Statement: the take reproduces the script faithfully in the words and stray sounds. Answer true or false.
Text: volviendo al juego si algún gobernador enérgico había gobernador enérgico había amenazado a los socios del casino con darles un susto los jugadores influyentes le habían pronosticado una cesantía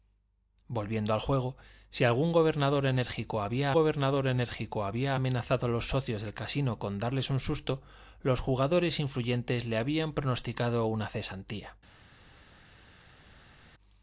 true